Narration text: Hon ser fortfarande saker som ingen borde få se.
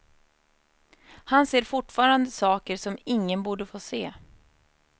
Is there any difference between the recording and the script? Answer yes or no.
yes